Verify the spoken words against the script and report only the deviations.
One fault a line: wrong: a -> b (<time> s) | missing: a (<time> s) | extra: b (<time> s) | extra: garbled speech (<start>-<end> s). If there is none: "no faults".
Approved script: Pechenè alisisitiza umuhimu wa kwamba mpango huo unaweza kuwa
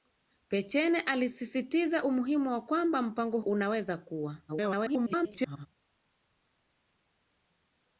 missing: huo (3.4 s)
extra: garbled speech (4.5-5.7 s)